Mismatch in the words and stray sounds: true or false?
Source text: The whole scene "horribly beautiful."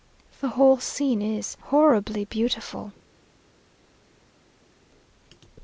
true